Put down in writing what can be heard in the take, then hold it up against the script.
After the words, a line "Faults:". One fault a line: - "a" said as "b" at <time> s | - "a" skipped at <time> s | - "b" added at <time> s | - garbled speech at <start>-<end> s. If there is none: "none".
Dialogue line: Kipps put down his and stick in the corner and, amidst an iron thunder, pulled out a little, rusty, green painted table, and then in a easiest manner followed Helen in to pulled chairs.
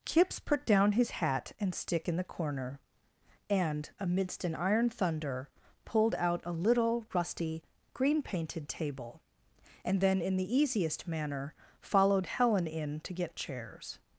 Kipps put down his hat and stick in the corner and, amidst an iron thunder, pulled out a little, rusty, green painted table, and then in the easiest manner followed Helen in to get chairs.
Faults:
- "hat" added at 1.1 s
- "a" said as "the" at 10.4 s
- "pulled" said as "get" at 13.1 s